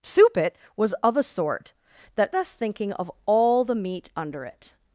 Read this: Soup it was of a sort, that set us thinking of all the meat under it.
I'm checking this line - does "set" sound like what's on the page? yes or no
no